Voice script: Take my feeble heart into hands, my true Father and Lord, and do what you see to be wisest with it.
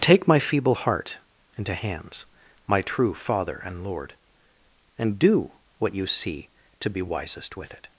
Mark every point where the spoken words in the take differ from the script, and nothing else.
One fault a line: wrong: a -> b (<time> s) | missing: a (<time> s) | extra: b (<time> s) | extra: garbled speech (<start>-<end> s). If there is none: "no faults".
no faults